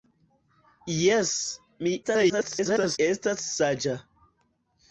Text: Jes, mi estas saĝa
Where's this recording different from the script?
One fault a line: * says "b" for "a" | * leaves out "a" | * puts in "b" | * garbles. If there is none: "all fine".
* garbles